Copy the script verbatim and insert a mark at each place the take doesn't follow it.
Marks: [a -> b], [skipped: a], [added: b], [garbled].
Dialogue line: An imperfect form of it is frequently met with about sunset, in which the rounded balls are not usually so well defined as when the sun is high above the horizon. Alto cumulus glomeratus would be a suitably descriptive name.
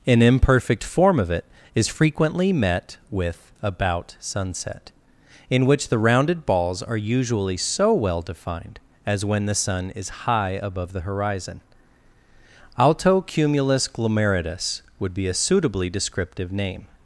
An imperfect form of it is frequently met with about sunset, in which the rounded balls are [skipped: not] usually so well defined as when the sun is high above the horizon. Alto cumulus glomeratus would be a suitably descriptive name.